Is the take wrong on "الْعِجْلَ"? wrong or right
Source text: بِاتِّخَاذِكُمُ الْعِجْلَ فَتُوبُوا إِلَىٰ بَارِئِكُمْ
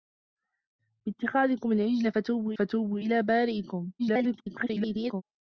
right